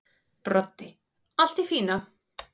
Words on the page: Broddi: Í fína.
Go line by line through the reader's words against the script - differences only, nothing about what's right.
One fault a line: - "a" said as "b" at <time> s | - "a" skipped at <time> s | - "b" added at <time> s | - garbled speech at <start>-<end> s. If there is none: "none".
- "Allt" added at 1.4 s